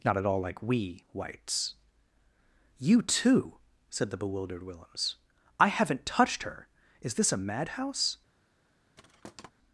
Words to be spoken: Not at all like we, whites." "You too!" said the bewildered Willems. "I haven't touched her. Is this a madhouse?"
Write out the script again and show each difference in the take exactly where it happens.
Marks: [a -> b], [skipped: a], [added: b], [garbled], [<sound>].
Not at all like we, whites." "You too!" said the bewildered Willems. "I haven't touched her. Is this a madhouse?" [thud]